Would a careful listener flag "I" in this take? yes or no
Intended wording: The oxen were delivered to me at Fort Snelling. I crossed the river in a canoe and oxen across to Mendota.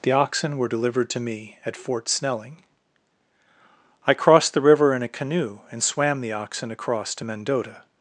no